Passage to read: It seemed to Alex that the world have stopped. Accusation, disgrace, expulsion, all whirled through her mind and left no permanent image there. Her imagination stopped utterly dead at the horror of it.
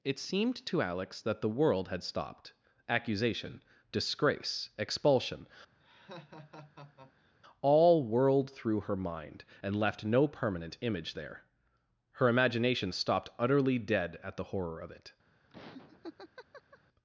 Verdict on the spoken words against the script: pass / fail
fail